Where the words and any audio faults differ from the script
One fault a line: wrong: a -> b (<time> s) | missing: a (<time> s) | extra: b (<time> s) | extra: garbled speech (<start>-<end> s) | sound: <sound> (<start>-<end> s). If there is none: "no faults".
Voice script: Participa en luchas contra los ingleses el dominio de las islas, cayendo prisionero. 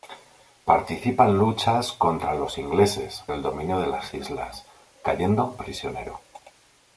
no faults